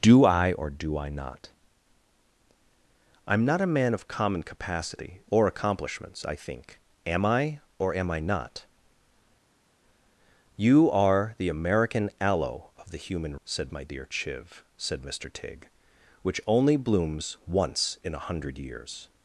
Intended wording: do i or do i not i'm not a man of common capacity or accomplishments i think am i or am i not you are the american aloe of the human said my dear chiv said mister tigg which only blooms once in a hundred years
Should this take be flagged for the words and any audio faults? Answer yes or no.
no